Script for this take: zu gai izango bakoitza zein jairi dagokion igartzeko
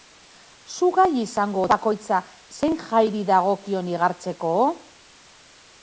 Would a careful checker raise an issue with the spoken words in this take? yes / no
no